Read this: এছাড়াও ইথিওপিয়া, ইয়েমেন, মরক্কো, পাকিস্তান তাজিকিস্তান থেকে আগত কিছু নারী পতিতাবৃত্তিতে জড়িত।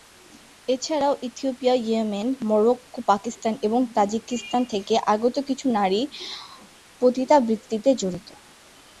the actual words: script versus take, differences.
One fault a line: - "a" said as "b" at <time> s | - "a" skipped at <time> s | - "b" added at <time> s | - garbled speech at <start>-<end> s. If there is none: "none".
- "এবং" added at 3.6 s